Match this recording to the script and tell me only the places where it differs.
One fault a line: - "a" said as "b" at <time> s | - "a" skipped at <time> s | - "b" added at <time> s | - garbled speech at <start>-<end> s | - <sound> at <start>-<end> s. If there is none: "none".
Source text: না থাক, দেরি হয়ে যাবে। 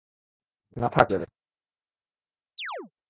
- "দেরি হয়ে" skipped at 1.1 s
- chirp at 2.6-2.9 s